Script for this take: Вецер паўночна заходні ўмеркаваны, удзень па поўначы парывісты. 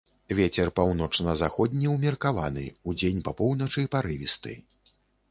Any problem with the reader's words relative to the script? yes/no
no